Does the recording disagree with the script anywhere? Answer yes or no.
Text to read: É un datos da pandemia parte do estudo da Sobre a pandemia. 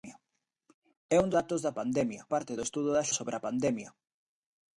no